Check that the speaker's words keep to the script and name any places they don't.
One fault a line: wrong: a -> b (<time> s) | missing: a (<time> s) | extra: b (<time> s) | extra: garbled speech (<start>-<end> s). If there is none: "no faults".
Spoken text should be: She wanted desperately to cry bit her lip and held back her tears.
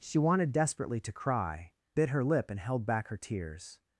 no faults